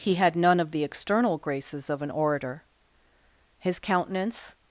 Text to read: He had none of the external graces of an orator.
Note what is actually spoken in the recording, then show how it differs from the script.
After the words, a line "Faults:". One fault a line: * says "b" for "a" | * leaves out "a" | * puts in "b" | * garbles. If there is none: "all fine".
He had none of the external graces of an orator. His countenance
Faults:
* puts in "His countenance"